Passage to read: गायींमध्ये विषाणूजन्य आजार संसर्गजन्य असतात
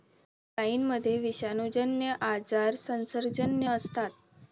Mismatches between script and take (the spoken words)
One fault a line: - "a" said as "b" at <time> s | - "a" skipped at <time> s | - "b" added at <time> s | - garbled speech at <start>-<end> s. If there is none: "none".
none